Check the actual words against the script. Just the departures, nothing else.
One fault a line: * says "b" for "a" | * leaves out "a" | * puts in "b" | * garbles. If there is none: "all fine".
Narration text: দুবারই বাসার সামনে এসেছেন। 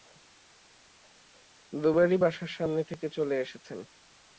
* puts in "থেকে চলে"